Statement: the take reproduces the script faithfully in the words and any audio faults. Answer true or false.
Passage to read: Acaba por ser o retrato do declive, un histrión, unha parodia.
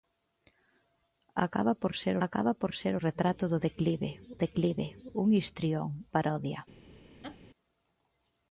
false